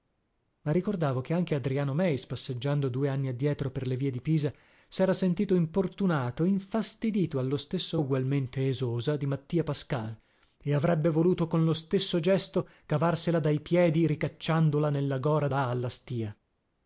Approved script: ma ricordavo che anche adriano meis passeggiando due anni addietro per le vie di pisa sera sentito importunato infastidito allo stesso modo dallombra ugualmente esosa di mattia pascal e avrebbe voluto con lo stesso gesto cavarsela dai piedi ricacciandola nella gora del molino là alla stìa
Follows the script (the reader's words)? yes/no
no